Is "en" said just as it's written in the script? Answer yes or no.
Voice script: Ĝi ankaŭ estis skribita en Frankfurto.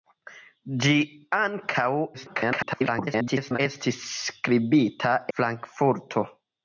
no